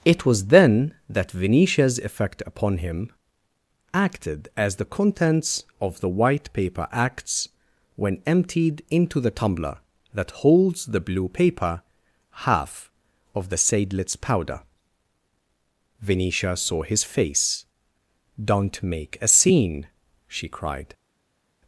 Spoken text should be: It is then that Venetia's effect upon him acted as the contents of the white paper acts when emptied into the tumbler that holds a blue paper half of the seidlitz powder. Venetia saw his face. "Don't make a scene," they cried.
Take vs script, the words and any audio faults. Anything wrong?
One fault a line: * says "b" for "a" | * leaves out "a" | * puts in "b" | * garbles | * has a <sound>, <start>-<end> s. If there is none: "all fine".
* says "was" for "is"
* says "the" for "a"
* says "she" for "they"